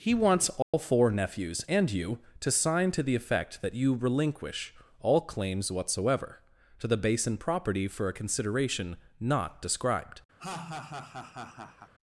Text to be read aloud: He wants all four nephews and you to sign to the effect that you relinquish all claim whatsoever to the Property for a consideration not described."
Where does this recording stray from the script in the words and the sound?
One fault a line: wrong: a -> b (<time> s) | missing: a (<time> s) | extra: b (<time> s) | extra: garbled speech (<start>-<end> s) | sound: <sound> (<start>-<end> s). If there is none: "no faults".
sound: dropout (0.6-0.7 s)
wrong: claim -> claims (5.2 s)
extra: Basin (7.0 s)
sound: laugh (10.4-11.9 s)